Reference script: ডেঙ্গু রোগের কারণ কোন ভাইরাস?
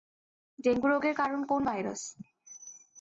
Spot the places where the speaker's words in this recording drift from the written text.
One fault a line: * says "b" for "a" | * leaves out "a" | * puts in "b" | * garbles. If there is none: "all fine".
all fine